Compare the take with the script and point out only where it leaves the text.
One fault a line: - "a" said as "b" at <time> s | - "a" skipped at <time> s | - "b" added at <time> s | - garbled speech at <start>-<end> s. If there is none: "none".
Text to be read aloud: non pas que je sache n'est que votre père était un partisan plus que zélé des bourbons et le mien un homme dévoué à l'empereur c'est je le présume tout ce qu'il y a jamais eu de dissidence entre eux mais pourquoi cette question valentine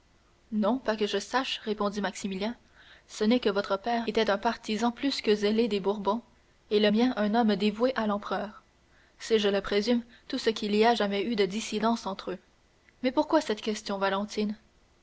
- "répondit maximilien ce" added at 1.6 s